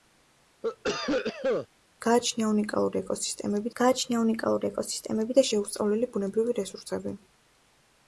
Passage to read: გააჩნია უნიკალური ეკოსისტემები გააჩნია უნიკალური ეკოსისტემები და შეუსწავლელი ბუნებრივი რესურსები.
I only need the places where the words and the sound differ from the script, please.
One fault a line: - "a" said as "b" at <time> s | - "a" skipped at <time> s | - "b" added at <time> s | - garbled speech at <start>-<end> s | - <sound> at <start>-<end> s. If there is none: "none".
- cough at 0.6-1.7 s